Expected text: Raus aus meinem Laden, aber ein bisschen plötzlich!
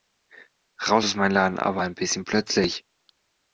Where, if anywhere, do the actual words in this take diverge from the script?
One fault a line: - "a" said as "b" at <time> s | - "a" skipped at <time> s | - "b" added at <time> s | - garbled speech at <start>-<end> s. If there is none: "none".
none